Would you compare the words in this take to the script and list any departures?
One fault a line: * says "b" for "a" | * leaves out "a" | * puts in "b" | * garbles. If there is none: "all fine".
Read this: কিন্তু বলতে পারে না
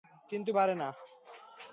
* leaves out "বলতে"